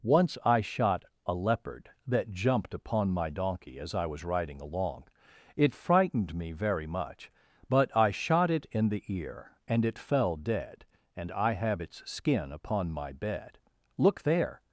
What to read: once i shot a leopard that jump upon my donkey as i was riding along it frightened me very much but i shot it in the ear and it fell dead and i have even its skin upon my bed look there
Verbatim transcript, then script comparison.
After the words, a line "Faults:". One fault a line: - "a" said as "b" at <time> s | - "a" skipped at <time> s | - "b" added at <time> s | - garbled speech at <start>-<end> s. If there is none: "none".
once i shot a leopard that jumped upon my donkey as i was riding along it frightened me very much but i shot it in the ear and it fell dead and i have its skin upon my bed look there
Faults:
- "jump" said as "jumped" at 2.3 s
- "even" skipped at 11.8 s